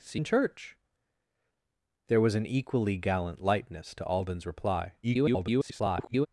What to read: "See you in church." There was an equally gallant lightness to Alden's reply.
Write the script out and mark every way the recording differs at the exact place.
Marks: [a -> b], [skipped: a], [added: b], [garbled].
"See [skipped: you] in church." There was an equally gallant lightness to Alden's reply. [garbled]